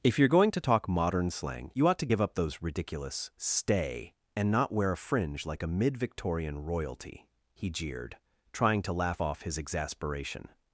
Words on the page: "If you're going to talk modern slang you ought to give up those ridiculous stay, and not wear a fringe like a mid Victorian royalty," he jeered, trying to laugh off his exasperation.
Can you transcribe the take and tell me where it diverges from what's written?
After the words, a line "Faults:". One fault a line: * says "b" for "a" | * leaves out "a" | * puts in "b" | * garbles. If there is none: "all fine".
"If you're going to talk modern slang you ought to give up those ridiculous stay, and not wear a fringe like a mid Victorian royalty," he jeered, trying to laugh off his exasperation.
Faults:
all fine